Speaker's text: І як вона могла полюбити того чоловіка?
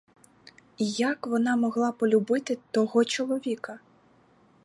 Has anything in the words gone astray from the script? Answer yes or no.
no